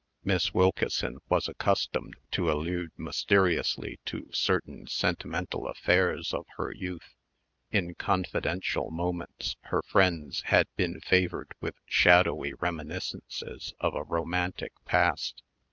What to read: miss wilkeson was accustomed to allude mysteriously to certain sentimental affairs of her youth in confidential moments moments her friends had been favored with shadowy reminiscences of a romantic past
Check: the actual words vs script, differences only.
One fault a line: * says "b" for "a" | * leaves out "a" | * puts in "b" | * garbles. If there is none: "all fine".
* leaves out "moments"